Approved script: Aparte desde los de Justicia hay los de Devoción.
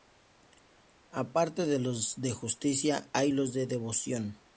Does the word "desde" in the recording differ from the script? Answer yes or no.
yes